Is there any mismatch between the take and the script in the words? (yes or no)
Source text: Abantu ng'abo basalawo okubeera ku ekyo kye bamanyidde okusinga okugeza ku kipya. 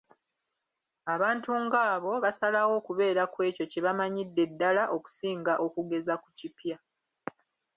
yes